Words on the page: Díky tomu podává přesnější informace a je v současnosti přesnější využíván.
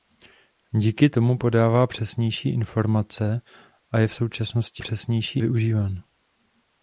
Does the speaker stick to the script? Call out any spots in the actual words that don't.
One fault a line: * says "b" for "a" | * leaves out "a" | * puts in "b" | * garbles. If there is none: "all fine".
all fine